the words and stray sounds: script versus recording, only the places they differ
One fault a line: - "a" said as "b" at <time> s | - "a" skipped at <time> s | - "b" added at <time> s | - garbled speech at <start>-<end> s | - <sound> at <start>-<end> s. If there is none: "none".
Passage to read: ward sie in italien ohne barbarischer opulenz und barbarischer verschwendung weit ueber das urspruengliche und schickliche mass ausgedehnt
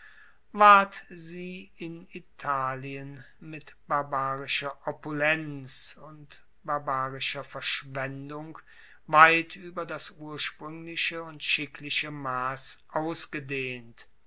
- "ohne" said as "mit" at 3.4 s